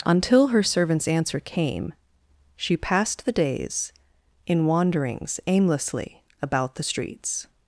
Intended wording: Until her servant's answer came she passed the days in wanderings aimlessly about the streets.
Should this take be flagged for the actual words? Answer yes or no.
no